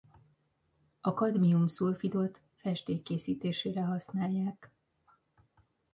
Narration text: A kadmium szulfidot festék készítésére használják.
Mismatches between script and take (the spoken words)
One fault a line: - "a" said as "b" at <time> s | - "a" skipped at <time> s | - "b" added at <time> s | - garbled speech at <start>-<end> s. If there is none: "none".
none